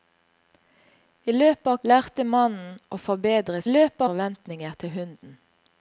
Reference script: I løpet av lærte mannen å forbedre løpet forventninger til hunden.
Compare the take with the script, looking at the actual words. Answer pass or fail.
pass